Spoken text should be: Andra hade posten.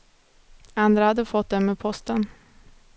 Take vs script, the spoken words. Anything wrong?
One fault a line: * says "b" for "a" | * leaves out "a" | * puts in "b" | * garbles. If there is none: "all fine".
* puts in "fått dem med"